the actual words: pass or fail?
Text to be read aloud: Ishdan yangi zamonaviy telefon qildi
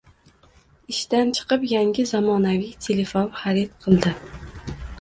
fail